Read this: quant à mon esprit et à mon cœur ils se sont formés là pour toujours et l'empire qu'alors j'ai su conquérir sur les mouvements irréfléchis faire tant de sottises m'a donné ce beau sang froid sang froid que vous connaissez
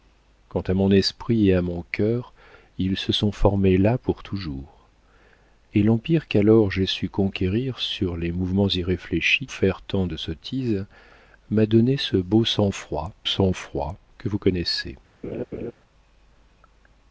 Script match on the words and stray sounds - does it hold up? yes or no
no